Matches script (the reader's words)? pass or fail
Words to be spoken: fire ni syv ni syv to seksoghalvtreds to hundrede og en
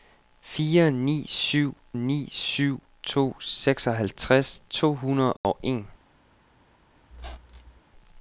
pass